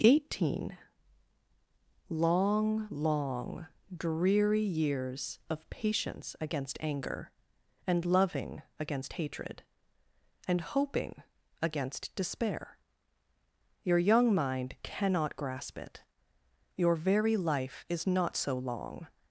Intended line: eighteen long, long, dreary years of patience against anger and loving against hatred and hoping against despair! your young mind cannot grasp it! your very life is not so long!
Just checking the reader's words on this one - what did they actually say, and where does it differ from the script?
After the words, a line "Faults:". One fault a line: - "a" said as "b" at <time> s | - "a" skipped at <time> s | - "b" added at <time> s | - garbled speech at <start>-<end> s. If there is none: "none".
eighteen long, long, dreary years of patience against anger and loving against hatred and hoping against despair! your young mind cannot grasp it! your very life is not so long!
Faults:
none